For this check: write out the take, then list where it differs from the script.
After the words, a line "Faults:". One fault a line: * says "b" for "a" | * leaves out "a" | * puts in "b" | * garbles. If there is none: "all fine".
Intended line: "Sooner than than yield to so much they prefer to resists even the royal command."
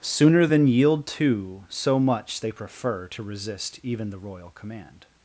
"Sooner than yield to so much they prefer to resist even the royal command."
Faults:
* leaves out "than"
* says "resist" for "resists"